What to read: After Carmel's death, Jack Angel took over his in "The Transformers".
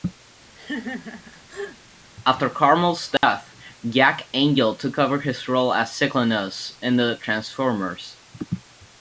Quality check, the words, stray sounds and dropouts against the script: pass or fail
fail